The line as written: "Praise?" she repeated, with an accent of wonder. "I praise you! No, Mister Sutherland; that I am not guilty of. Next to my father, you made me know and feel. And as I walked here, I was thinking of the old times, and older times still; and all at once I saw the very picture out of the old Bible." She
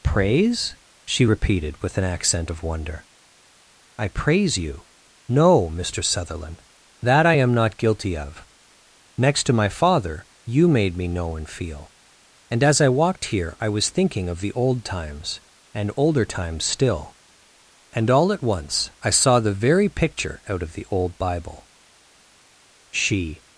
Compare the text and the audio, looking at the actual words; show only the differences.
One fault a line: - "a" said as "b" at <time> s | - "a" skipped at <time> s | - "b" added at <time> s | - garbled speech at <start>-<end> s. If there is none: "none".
none